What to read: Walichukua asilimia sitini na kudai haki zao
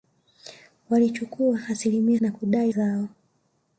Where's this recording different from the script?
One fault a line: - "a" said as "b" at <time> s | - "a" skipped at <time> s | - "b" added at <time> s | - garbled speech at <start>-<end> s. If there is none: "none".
- "sitini" skipped at 2.2 s
- "haki" skipped at 2.7 s